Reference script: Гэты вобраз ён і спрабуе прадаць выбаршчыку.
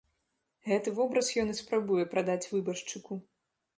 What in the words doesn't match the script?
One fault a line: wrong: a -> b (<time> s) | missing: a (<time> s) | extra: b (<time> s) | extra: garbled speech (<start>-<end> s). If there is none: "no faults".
no faults